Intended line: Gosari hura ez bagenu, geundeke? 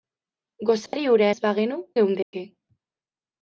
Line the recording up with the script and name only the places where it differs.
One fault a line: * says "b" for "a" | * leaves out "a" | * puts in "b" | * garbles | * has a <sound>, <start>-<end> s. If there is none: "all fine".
* has a dropout, 0.9-0.9 s
* has a dropout, 2.2-2.3 s